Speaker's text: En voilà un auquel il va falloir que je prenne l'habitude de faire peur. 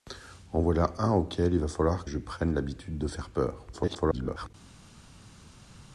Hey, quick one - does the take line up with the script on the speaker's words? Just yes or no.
no